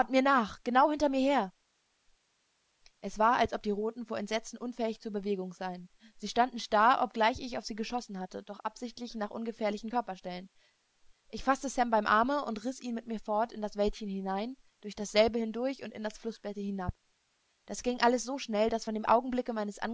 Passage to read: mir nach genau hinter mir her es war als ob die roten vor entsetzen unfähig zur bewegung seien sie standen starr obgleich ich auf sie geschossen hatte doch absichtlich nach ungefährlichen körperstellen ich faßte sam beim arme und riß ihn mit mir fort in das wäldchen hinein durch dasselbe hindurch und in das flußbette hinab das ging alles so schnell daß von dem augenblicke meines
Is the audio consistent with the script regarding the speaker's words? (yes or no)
yes